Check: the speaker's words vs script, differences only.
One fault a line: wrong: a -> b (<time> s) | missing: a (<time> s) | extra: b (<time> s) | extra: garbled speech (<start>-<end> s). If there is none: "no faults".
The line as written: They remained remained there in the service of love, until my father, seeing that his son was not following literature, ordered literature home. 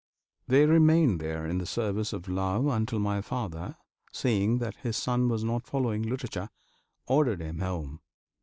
missing: remained (1.2 s)
wrong: literature -> him (7.4 s)